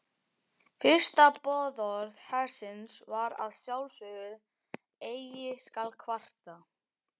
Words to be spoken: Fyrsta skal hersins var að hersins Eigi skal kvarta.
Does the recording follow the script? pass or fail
fail